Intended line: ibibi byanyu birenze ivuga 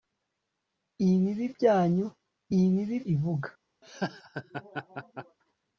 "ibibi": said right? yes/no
yes